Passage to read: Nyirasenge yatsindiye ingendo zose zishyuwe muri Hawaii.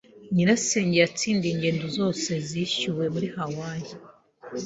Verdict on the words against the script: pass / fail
pass